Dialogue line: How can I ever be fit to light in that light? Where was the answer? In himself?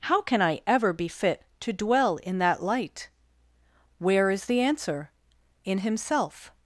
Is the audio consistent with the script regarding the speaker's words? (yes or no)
no